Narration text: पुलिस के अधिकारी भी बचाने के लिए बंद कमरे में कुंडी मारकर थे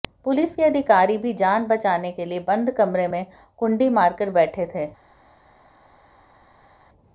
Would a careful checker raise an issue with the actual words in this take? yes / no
yes